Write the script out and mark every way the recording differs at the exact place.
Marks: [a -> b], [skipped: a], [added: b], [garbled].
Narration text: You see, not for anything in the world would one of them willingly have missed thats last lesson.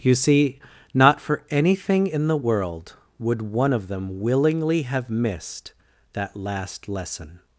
You see, not for anything in the world would one of them willingly have missed [thats -> that] last lesson.